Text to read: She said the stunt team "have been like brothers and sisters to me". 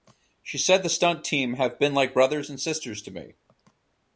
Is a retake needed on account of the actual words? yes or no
no